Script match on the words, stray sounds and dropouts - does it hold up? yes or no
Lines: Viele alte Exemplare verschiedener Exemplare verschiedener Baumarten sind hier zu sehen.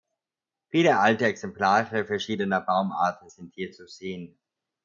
no